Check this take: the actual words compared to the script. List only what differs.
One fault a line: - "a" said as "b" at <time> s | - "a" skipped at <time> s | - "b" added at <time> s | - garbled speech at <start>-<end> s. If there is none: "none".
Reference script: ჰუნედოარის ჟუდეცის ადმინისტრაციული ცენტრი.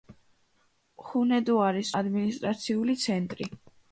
- "ჟუდეცის" skipped at 1.9 s